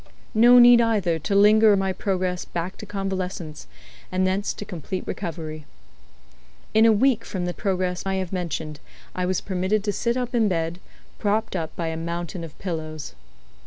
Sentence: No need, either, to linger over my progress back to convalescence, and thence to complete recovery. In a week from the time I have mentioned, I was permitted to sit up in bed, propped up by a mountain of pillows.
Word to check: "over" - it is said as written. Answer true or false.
false